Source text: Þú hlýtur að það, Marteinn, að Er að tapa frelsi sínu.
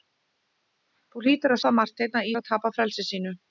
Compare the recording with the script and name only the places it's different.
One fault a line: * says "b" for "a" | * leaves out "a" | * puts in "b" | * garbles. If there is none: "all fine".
all fine